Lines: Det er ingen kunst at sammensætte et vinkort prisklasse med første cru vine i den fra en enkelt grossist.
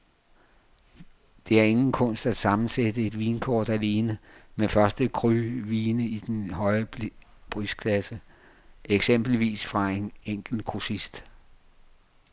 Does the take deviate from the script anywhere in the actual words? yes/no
yes